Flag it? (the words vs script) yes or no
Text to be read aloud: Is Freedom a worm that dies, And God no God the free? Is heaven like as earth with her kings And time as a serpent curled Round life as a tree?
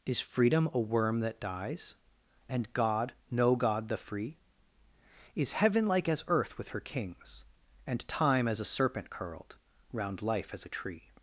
no